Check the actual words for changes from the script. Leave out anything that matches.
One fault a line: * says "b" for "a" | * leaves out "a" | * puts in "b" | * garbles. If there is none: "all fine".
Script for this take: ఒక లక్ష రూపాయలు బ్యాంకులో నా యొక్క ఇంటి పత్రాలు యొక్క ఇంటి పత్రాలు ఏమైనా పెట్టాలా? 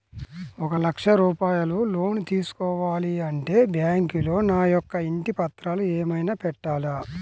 * says "లోన్ తీసుకోవాలి అంటే బ్యాంకులో నా" for "బ్యాంకులో నా యొక్క ఇంటి పత్రాలు"